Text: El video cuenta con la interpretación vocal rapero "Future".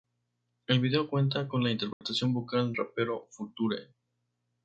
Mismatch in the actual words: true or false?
false